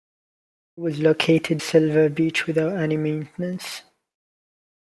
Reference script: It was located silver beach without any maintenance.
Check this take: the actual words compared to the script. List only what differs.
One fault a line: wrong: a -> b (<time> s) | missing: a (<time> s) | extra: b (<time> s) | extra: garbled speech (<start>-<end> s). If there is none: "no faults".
no faults